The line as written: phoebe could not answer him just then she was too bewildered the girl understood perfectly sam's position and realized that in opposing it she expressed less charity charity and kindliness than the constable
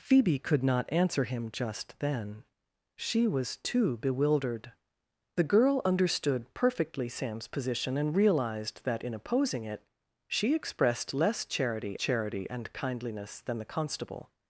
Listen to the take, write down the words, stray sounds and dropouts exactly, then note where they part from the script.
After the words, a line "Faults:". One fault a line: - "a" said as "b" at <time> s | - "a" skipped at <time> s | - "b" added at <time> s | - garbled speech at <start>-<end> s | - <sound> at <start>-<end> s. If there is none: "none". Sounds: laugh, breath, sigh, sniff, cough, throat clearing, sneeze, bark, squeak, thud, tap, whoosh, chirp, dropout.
phoebe could not answer him just then she was too bewildered the girl understood perfectly sam's position and realized that in opposing it she expressed less charity charity and kindliness than the constable
Faults:
none